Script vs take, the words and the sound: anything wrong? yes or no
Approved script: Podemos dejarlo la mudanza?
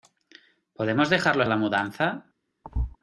yes